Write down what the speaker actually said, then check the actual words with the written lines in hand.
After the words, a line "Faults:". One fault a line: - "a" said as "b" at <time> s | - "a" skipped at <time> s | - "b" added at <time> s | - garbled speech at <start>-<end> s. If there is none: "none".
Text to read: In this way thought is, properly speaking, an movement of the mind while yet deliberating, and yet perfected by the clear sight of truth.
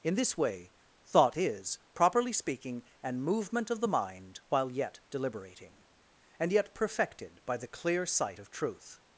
In this way thought is, properly speaking, an movement of the mind while yet deliberating, and yet perfected by the clear sight of truth.
Faults:
none